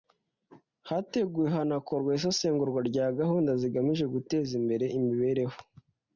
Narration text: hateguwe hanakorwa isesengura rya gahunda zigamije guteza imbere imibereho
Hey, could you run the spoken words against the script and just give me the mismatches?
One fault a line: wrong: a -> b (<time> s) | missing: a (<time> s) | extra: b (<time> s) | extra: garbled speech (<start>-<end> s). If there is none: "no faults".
no faults